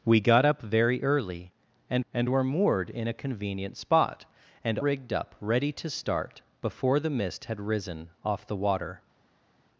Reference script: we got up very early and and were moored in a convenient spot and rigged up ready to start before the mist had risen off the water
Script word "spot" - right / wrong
right